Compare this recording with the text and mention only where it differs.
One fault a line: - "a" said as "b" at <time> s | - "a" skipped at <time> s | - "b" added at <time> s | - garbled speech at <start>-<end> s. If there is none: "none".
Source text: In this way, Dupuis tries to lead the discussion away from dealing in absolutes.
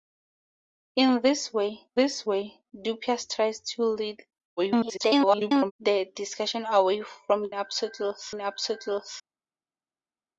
- "this way" added at 1.9 s
- garbled speech at 4.6-5.7 s
- "dealing" said as "absolutes" at 7.5 s